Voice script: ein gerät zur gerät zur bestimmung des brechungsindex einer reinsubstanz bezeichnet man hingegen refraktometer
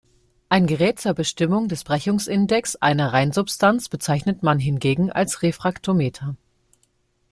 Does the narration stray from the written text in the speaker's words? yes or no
yes